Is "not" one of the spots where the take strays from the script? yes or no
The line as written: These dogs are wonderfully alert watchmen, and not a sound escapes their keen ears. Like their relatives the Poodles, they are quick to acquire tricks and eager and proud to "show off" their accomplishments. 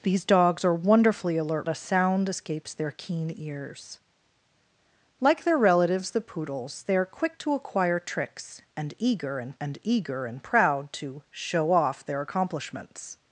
yes